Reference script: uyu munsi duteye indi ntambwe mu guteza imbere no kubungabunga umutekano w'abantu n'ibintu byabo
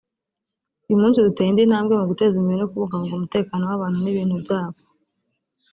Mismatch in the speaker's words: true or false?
false